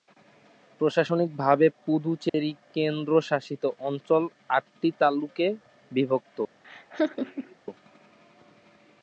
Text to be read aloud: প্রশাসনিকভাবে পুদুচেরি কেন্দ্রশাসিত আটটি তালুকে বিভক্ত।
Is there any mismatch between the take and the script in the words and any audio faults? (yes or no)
yes